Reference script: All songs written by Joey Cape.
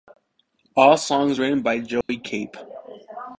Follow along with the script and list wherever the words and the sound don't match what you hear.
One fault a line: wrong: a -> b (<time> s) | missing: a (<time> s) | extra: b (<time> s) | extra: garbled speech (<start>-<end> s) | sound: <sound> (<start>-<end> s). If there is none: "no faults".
sound: dropout (2.0-2.1 s)